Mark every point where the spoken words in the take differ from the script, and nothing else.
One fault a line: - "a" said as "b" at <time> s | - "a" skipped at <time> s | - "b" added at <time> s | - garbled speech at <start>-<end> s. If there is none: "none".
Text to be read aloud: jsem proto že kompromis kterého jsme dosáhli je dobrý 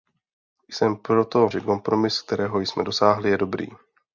none